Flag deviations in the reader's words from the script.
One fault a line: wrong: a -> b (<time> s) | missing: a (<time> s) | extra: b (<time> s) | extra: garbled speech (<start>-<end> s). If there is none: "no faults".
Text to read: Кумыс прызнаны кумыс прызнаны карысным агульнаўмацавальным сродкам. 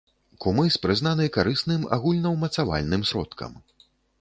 missing: кумыс прызнаны (1.3 s)